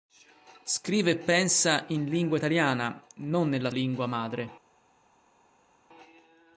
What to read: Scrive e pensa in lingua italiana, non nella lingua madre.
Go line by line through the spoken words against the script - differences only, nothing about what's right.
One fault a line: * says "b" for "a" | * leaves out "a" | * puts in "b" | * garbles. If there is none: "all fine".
all fine